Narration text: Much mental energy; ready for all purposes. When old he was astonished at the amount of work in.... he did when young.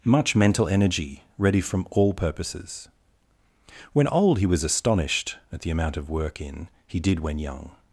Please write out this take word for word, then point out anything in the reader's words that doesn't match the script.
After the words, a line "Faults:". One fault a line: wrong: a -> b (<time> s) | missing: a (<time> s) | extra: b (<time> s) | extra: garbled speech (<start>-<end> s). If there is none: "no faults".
Much mental energy; ready from all purposes. When old he was astonished at the amount of work in.... he did when young.
Faults:
wrong: for -> from (1.6 s)